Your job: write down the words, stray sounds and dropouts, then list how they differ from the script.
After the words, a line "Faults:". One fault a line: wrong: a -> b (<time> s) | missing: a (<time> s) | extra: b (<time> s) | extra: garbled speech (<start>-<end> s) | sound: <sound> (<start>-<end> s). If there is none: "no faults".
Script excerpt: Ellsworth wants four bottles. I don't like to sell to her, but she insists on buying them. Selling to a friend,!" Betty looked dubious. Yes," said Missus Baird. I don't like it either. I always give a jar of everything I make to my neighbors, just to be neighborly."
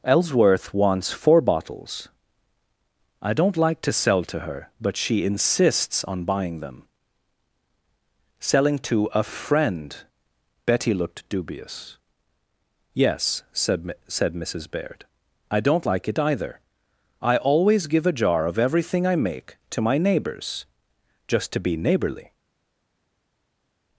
Ellsworth wants four bottles. I don't like to sell to her, but she insists on buying them. Selling to a friend,!" Betty looked dubious. Yes," said said Missus Baird. I don't like it either. I always give a jar of everything I make to my neighbors, just to be neighborly."
Faults:
extra: said (14.1 s)